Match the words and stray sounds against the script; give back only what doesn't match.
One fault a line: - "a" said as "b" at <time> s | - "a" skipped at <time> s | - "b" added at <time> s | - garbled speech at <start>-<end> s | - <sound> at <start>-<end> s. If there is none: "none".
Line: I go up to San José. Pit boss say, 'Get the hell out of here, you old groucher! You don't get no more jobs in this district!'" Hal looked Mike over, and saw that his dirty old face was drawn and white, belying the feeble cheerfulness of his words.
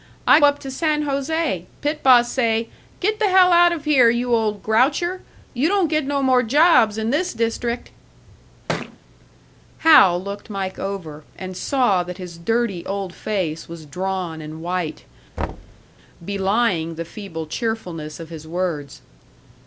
- "go" skipped at 0.4 s
- thud at 8.7-9.0 s
- thud at 15.4-15.9 s